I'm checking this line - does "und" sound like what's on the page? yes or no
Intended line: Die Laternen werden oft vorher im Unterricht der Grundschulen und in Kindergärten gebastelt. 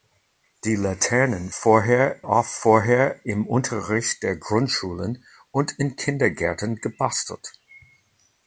yes